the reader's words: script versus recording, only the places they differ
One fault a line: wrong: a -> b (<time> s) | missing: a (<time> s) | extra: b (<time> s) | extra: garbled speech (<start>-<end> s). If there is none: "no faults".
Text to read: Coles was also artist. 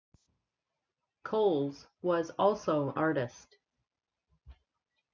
no faults